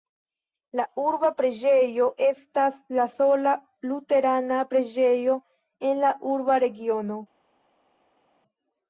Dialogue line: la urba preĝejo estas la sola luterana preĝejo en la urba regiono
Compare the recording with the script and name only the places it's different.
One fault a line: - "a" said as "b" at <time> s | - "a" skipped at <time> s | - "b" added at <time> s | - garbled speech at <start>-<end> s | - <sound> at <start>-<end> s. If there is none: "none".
none